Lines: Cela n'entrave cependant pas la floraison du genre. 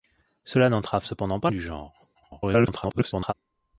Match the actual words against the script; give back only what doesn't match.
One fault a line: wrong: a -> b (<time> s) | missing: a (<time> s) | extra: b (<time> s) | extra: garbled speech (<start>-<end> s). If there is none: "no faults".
missing: la floraison (1.5 s)
extra: garbled speech (2.1-3.3 s)